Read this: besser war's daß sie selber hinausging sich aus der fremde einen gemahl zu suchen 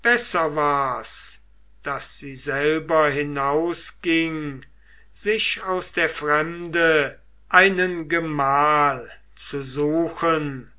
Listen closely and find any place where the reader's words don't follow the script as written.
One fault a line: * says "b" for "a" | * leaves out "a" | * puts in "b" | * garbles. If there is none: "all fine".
all fine